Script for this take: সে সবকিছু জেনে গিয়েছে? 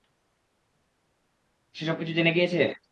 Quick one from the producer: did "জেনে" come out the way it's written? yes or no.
yes